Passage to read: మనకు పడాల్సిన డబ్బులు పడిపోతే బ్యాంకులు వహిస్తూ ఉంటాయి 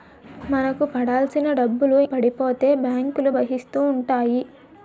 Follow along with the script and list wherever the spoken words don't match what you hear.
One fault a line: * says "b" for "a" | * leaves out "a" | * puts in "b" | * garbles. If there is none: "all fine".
all fine